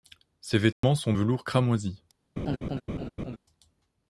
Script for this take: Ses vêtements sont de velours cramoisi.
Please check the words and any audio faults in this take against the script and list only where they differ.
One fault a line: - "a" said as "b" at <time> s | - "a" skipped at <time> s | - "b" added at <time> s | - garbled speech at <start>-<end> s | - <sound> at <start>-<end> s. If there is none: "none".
- dropout at 0.7-0.8 s
- "de" skipped at 1.1 s
- laugh at 2.4-3.4 s